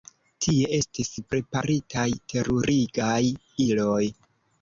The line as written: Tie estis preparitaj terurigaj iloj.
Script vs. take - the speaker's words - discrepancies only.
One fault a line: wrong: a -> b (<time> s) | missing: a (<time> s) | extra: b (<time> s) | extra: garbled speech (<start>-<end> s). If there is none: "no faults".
no faults